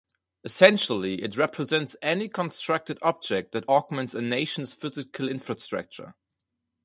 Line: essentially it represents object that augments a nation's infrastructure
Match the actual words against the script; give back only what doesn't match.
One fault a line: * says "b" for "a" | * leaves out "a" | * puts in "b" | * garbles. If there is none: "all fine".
* puts in "any constructed"
* puts in "physical"